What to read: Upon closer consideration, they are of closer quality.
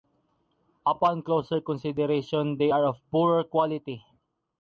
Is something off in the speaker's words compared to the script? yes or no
yes